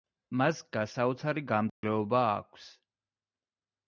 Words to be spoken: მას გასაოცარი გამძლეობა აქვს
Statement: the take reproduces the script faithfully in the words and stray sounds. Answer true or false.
false